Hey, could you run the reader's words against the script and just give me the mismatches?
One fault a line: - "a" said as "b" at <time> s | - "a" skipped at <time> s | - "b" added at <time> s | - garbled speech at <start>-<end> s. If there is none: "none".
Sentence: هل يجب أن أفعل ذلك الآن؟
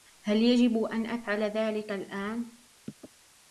none